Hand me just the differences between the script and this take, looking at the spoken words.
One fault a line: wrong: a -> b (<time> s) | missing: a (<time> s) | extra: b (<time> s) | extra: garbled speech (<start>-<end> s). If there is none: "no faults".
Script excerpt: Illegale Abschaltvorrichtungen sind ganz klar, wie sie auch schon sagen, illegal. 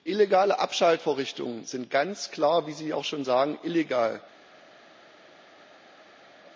no faults